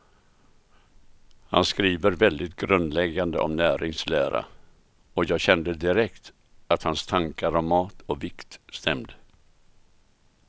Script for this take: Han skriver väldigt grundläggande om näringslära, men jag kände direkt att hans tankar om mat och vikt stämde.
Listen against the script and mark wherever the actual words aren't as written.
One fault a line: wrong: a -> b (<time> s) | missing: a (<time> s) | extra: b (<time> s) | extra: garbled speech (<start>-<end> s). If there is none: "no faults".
wrong: men -> och (5.1 s)